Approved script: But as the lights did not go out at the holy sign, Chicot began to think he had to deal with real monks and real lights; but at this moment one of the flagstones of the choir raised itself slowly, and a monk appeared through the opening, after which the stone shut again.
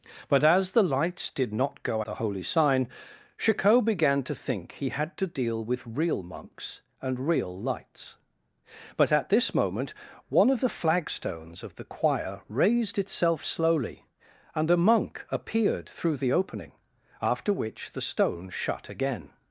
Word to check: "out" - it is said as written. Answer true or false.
false